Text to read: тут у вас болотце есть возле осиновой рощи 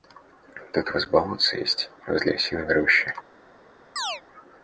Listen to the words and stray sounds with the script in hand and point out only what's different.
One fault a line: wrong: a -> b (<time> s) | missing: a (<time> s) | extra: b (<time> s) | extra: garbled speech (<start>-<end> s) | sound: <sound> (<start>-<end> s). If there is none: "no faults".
sound: chirp (4.0-4.2 s)